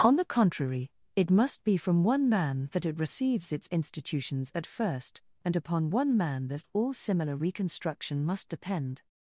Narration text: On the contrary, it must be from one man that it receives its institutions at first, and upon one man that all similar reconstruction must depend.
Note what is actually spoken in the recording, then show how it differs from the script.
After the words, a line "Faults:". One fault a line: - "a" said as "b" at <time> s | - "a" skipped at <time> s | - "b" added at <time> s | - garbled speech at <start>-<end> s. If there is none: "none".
On the contrary, it must be from one man that it receives its institutions at first, and upon one man that all similar reconstruction must depend.
Faults:
none